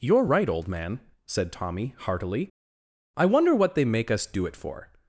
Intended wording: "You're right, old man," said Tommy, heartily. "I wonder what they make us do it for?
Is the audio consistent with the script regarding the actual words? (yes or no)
yes